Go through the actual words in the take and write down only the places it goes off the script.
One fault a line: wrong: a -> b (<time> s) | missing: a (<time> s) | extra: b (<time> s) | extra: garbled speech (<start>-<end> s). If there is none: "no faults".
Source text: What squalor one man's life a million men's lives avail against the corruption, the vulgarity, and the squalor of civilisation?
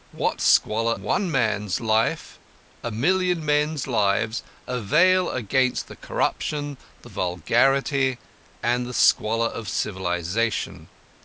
no faults